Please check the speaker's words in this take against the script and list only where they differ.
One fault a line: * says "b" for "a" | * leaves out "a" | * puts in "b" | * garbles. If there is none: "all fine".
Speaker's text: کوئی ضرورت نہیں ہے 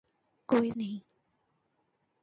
* leaves out "ضرورت"